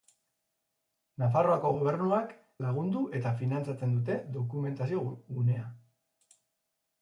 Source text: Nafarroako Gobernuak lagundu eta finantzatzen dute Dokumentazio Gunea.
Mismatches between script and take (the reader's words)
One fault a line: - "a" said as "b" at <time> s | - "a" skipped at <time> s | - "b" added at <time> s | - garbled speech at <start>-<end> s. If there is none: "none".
none